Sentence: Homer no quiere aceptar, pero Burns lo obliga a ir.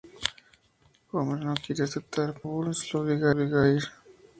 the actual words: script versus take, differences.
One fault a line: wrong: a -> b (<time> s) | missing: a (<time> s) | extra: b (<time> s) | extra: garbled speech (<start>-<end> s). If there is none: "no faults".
missing: pero (2.4 s)
extra: obliga (3.3 s)